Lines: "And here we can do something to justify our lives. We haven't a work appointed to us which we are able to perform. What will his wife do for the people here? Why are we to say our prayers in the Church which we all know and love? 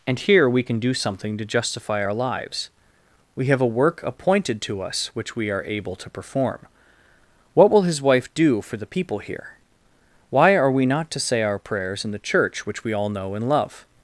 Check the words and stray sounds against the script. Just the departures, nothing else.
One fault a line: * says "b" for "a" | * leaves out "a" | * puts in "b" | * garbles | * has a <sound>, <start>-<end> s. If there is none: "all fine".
* says "have" for "haven't"
* puts in "not"